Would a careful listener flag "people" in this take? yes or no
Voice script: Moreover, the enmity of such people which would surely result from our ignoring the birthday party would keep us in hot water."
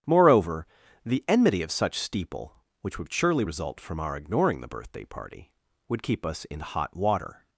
yes